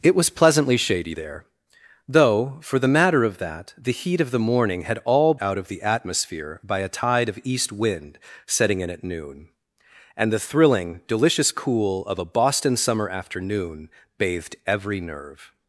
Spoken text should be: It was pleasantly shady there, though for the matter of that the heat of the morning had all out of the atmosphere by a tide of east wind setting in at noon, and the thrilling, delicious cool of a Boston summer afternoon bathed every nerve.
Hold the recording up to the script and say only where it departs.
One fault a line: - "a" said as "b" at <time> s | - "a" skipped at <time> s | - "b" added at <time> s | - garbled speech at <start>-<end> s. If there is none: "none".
none